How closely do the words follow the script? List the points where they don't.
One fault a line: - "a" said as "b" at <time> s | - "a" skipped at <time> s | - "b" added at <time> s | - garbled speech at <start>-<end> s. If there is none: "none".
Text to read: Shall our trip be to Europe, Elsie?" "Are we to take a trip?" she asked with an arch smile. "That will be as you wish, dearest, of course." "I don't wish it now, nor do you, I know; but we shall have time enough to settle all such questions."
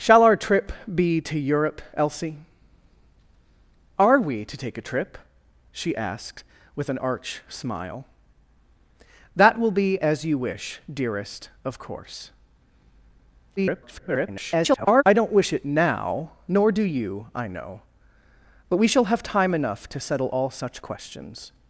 - garbled speech at 13.6-15.0 s